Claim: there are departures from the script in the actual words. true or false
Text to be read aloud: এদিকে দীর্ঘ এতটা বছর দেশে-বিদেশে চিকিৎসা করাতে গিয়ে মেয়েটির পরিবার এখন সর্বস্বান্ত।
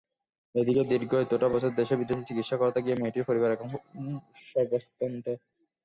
false